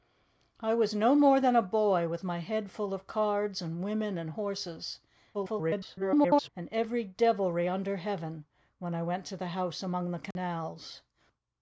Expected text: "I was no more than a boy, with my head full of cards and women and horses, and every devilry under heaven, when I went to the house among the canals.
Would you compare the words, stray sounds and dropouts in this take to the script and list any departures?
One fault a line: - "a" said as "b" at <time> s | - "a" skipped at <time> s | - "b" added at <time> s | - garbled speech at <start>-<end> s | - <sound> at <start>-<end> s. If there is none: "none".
- garbled speech at 5.3-6.5 s
- dropout at 10.3-10.4 s